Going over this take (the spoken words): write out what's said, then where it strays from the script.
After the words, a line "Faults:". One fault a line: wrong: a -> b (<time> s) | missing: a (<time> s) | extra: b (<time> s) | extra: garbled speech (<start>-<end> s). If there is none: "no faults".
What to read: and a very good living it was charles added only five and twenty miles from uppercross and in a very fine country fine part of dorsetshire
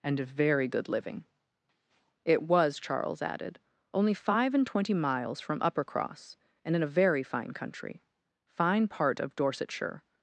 and a very good living it was charles added only five and twenty miles from uppercross and in a very fine country fine part of dorsetshire
Faults:
no faults